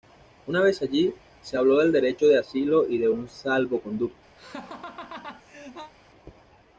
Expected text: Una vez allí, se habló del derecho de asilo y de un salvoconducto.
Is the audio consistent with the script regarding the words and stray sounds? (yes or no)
no